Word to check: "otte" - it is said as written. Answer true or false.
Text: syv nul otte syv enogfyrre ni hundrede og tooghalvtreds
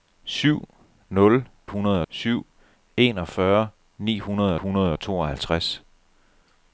false